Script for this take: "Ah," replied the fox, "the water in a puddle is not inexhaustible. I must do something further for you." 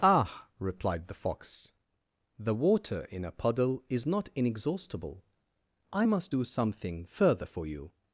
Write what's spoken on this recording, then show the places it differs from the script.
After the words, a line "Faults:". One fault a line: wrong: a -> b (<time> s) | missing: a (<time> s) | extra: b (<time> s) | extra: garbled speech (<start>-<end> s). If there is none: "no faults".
"Ah," replied the fox, "the water in a puddle is not inexhaustible. I must do something further for you."
Faults:
no faults